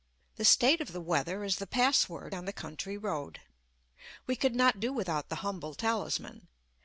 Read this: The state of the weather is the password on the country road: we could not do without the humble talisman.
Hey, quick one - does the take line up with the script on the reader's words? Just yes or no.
yes